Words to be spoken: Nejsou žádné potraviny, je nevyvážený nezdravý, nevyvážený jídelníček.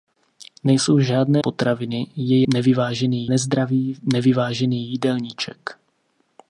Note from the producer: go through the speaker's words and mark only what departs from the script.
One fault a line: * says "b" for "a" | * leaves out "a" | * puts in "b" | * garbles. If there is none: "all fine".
all fine